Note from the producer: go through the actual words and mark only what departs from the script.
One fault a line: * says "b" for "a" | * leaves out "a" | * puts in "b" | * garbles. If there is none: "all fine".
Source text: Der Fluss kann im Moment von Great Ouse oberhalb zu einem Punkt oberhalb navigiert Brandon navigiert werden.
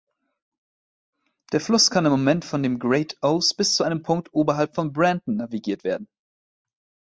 * puts in "dem"
* says "bis" for "oberhalb"
* says "von" for "navigiert"